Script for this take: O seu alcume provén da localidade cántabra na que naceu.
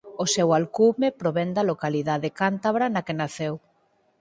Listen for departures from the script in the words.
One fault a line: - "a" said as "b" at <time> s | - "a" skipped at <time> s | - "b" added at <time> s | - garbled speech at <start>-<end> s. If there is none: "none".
none